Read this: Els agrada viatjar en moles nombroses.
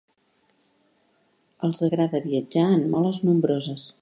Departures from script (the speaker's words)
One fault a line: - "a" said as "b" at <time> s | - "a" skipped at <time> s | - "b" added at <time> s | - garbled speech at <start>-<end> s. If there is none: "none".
none